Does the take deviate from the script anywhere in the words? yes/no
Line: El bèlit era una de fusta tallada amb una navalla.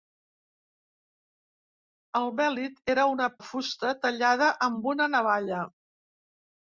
no